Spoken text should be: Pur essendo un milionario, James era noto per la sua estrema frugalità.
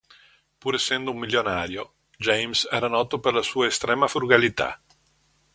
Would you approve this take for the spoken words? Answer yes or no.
yes